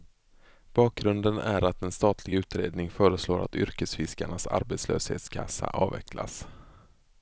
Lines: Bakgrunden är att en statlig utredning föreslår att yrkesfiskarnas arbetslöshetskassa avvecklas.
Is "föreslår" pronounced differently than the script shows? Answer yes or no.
no